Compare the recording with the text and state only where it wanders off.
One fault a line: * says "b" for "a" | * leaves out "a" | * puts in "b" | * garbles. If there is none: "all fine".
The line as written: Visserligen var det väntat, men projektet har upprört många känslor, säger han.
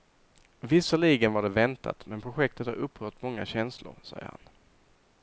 all fine